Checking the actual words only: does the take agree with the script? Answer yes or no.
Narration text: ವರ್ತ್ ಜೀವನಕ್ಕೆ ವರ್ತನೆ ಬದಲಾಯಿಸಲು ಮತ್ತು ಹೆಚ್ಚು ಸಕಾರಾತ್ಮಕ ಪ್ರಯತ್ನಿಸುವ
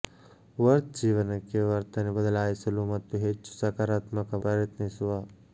yes